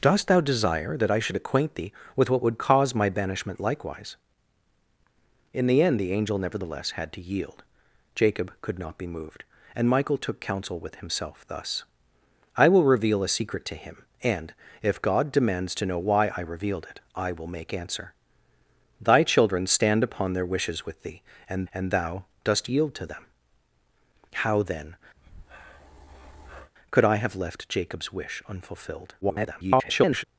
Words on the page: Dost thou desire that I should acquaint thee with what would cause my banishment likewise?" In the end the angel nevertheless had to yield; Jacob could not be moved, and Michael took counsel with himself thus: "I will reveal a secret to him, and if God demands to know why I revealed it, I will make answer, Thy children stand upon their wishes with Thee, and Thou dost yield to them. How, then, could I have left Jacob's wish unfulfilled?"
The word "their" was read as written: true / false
true